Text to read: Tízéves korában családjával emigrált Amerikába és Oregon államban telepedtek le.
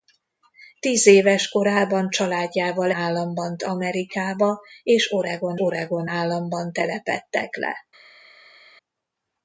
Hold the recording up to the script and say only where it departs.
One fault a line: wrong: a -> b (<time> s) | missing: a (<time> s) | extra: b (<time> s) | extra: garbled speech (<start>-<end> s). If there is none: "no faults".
wrong: emigrált -> államban (2.9 s)
extra: Oregon (5.6 s)